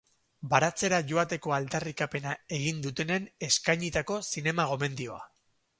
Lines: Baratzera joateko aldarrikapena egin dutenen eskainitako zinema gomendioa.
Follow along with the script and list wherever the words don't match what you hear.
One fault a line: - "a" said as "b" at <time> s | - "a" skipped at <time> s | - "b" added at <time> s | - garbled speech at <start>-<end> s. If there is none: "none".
none